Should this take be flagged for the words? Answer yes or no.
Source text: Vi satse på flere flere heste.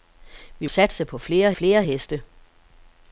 no